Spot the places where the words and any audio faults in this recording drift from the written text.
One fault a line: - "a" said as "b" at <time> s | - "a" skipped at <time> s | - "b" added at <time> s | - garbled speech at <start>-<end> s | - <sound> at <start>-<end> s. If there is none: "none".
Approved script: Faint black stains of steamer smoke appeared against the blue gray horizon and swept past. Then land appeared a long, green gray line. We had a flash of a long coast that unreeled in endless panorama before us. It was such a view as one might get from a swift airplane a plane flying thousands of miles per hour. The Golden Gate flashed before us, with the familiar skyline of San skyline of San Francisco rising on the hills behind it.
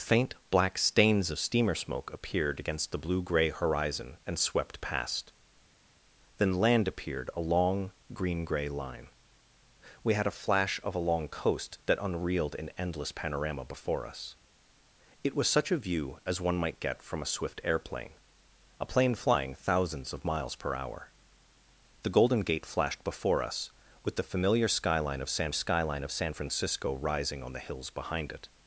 none